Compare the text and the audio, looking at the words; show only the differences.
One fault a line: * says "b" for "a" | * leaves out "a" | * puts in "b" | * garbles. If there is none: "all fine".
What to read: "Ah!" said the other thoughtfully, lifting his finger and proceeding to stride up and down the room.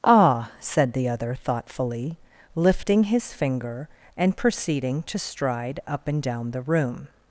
all fine